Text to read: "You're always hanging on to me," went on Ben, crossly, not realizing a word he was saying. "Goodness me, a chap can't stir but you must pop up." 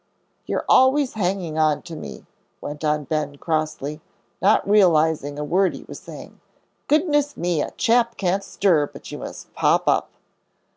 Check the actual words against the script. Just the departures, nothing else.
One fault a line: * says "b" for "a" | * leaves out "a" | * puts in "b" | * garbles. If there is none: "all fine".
all fine